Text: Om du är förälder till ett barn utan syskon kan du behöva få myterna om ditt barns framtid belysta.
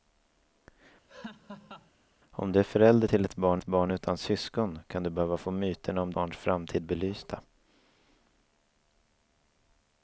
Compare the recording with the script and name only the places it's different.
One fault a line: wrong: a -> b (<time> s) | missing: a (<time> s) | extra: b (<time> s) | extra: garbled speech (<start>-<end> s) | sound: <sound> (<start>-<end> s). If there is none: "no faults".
sound: laugh (1.1-1.9 s)
extra: ett barn (3.6 s)
missing: ditt (6.1 s)